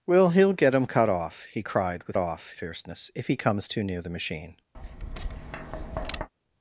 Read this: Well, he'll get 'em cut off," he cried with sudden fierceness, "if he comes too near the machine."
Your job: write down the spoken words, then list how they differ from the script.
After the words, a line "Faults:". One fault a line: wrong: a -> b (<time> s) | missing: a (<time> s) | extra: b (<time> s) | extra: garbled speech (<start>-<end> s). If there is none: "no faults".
Well, he'll get 'em cut off," he cried with off fierceness, "if he comes too near the machine."
Faults:
wrong: sudden -> off (2.2 s)